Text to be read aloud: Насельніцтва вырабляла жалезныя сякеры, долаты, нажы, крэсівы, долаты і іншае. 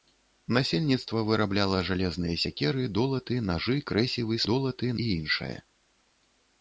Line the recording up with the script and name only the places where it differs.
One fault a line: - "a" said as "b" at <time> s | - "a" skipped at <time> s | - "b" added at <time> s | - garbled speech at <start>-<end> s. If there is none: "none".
none